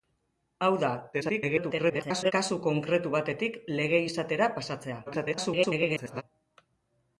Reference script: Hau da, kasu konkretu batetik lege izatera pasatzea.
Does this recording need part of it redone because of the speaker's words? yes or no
yes